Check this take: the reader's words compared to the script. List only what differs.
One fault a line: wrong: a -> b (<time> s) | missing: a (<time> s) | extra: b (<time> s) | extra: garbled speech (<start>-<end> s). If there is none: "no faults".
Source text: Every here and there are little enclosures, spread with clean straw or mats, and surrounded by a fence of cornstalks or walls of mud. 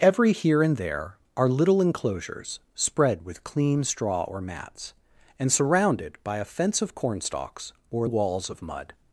no faults